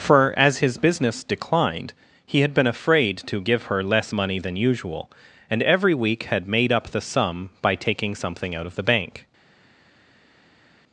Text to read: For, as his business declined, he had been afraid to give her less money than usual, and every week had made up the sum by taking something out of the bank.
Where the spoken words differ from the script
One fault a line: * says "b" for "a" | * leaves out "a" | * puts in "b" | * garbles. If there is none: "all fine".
all fine